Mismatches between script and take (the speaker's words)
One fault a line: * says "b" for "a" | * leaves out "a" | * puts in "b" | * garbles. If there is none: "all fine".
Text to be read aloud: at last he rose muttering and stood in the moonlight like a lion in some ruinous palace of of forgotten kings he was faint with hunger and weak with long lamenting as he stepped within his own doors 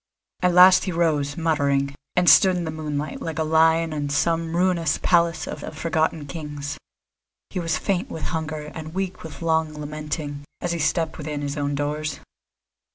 all fine